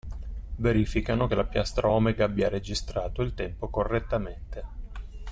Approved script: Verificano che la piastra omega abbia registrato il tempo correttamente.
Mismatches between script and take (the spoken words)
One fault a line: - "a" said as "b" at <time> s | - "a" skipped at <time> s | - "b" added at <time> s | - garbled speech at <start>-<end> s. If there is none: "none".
none